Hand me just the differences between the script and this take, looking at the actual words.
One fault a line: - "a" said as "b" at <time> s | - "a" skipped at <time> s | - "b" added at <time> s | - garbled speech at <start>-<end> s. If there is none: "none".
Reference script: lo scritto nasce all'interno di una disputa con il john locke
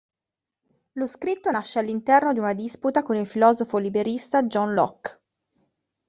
- "filosofo liberista" added at 3.2 s